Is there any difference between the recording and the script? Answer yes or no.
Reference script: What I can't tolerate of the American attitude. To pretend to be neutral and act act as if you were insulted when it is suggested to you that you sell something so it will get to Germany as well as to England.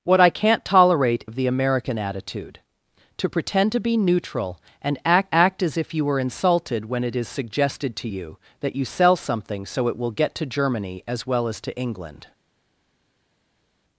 no